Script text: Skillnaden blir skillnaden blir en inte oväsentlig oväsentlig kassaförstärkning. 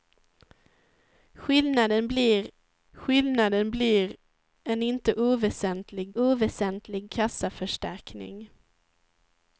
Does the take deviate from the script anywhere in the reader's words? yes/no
no